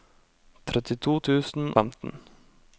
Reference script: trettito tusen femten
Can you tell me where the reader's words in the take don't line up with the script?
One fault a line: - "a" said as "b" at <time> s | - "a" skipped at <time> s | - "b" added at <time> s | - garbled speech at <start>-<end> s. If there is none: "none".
none